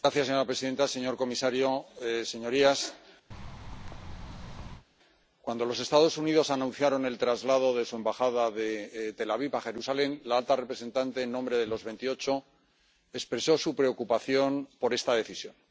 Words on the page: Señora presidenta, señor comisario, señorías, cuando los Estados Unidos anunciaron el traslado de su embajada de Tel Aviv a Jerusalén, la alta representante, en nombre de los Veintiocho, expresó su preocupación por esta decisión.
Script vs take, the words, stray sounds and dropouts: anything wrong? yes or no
yes